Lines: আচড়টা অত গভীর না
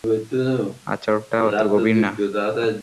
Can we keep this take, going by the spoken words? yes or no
yes